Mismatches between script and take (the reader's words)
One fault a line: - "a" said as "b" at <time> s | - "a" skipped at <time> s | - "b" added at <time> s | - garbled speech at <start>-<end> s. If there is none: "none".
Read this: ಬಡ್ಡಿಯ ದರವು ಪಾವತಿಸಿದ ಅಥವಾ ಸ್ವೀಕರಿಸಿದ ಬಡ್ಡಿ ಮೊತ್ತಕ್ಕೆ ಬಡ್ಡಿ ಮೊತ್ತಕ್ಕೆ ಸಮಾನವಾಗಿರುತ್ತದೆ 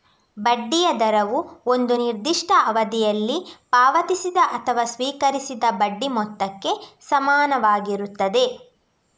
- "ಒಂದು ನಿರ್ದಿಷ್ಟ ಅವಧಿಯಲ್ಲಿ" added at 1.6 s
- "ಬಡ್ಡಿ ಮೊತ್ತಕ್ಕೆ" skipped at 6.7 s